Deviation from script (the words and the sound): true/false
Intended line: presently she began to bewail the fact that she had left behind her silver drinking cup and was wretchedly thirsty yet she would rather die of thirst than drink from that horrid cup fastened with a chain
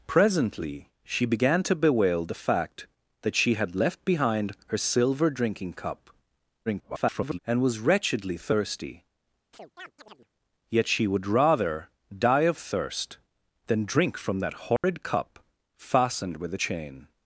true